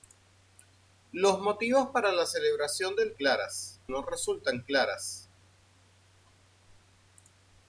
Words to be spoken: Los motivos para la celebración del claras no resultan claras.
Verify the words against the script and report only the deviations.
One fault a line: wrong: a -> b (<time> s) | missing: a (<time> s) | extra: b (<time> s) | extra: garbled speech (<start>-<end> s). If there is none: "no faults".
no faults